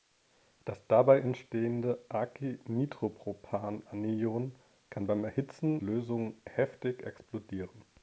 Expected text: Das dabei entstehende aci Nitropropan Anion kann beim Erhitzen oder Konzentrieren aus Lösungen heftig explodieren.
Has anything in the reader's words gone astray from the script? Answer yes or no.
yes